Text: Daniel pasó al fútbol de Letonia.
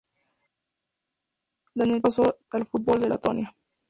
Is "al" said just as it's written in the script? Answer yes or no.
yes